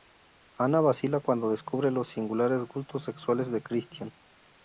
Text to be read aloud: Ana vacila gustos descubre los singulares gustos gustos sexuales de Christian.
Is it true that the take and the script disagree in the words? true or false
true